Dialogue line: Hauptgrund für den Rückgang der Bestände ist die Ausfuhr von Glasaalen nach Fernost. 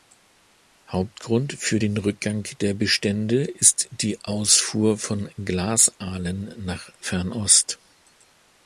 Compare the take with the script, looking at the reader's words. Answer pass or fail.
pass